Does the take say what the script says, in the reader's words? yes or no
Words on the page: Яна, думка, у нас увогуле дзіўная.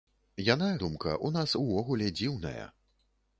yes